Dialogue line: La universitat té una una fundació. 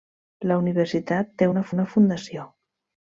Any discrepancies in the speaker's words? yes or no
no